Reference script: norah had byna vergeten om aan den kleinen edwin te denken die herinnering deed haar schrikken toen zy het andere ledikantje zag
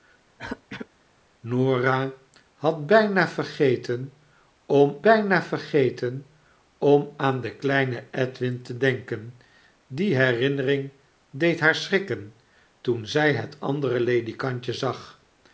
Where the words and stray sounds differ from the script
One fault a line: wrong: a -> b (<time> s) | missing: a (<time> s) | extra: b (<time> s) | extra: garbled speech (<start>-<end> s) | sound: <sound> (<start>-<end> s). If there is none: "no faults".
sound: throat clearing (0.4-0.9 s)
extra: byna vergeten om (5.0 s)